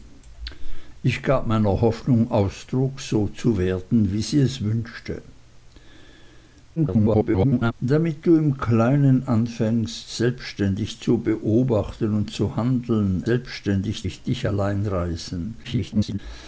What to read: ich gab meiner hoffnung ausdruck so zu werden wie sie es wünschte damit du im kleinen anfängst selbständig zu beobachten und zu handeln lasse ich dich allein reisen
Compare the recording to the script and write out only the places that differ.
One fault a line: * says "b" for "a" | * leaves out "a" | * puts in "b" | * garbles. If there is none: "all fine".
* garbles
* says "selbständig" for "lasse"
* garbles